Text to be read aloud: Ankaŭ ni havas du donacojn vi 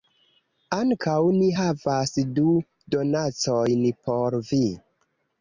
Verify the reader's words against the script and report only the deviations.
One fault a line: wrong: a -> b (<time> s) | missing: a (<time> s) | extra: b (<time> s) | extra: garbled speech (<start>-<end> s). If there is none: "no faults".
extra: por (4.1 s)